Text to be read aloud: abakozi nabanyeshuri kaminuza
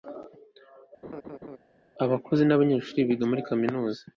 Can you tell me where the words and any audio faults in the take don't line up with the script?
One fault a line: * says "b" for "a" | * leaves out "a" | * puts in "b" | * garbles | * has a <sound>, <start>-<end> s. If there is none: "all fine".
* has a laugh, 1.0-1.6 s
* puts in "biga muri"